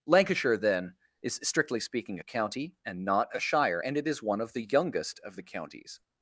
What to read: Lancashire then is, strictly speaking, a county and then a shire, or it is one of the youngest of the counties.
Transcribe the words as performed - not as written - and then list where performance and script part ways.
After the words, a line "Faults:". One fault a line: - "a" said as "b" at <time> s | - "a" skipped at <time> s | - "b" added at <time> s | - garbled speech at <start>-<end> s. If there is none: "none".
Lancashire then is, strictly speaking, a county and not a shire, and it is one of the youngest of the counties.
Faults:
- "then" said as "not" at 3.0 s
- "or" said as "and" at 3.8 s